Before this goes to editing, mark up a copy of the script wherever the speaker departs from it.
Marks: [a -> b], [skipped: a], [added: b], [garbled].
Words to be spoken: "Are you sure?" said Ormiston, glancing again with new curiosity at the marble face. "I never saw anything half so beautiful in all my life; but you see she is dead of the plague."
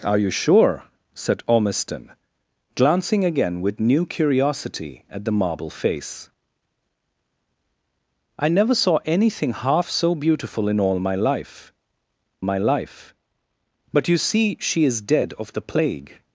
"Are you sure?" said Ormiston, glancing again with new curiosity at the marble face. "I never saw anything half so beautiful in all my life; [added: my life] but you see she is dead of the plague."